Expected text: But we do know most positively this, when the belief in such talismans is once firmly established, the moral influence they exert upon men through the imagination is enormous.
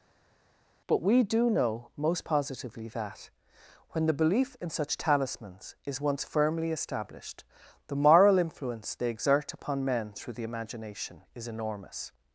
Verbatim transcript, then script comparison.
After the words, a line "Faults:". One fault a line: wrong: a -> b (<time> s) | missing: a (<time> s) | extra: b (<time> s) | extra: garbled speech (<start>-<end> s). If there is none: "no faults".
But we do know most positively that, when the belief in such talismans is once firmly established, the moral influence they exert upon men through the imagination is enormous.
Faults:
wrong: this -> that (2.9 s)